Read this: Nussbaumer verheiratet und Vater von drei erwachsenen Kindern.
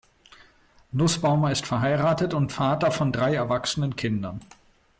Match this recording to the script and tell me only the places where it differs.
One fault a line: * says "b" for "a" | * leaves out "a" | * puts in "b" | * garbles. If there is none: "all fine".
* puts in "ist"